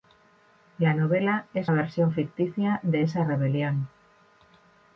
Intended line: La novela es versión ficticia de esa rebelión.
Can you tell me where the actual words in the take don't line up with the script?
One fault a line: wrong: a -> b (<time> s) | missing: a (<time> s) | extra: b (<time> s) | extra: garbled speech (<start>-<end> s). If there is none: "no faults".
no faults